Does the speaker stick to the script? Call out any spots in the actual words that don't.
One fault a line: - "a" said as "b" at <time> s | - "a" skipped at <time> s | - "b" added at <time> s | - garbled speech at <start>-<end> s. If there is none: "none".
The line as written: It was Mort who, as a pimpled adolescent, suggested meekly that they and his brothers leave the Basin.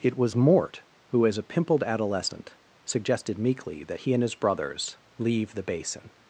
- "they" said as "he" at 4.0 s